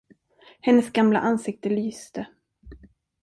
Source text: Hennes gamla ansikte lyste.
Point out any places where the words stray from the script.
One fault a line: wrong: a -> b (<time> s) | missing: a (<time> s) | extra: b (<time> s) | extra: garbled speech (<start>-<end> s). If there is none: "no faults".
no faults